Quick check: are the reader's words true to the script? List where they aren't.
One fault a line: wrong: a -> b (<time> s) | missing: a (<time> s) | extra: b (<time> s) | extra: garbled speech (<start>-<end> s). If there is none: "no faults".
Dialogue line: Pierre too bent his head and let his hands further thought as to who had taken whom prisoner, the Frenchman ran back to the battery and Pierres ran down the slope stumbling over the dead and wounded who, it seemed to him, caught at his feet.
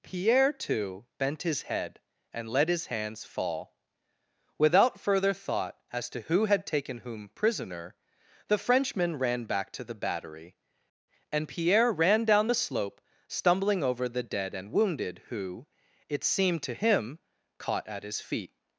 extra: fall Without (3.2 s)
wrong: Pierres -> Pierre (11.5 s)